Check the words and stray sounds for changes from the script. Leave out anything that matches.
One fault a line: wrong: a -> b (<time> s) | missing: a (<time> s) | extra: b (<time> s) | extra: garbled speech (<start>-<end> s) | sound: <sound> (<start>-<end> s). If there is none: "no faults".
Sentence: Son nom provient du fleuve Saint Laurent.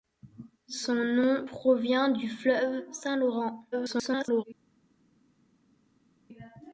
extra: garbled speech (3.7-4.4 s)